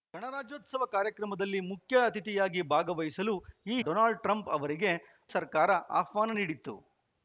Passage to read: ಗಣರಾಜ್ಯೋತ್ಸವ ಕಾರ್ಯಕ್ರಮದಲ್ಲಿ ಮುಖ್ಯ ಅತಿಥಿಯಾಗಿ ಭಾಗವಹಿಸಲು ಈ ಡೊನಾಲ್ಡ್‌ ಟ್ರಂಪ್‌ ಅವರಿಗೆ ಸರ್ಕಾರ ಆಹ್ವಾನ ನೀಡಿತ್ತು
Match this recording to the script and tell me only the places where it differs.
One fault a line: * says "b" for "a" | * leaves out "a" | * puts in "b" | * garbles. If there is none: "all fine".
all fine